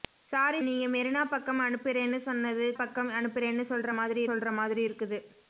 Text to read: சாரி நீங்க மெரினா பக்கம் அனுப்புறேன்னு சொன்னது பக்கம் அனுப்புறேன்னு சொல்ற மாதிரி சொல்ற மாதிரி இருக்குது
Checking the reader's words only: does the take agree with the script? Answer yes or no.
yes